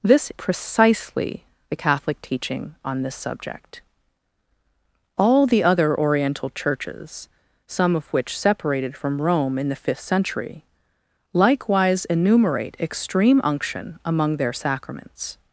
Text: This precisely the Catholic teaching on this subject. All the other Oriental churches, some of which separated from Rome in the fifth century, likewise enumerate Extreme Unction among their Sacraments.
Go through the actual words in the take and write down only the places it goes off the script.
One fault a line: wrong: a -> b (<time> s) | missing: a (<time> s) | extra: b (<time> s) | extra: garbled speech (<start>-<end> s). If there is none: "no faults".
no faults